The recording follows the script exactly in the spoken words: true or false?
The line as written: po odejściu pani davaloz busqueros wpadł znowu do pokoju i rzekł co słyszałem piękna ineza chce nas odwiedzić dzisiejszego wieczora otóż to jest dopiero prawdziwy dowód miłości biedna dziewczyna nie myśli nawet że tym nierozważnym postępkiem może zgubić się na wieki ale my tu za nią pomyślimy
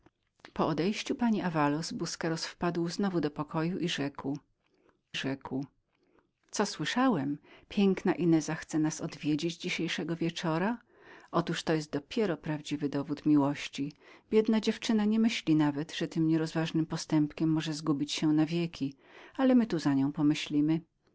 false